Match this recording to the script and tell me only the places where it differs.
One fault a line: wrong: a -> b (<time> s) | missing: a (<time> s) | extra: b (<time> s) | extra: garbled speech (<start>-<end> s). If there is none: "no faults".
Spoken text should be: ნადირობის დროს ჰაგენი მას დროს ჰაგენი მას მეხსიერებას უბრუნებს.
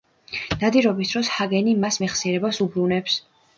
missing: დროს ჰაგენი მას (2.0 s)